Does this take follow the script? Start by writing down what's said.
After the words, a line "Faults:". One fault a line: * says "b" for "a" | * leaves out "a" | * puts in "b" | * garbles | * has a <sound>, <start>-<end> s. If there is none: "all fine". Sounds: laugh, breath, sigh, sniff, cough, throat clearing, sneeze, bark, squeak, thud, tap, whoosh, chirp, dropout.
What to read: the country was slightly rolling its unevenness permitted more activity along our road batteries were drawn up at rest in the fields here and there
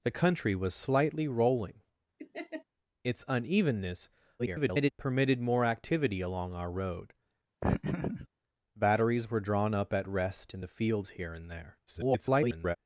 the country was slightly rolling its unevenness [garbled] permitted more activity along our road batteries were drawn up at rest in the fields here and there [garbled]
Faults:
* has a laugh, 2.2-2.6 s
* garbles
* has a laugh, 7.6-8.3 s
* garbles